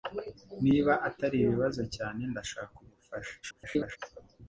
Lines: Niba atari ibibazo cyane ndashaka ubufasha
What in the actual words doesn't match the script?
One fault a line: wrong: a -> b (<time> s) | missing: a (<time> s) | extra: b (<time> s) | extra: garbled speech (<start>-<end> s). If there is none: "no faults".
extra: garbled speech (3.4-4.0 s)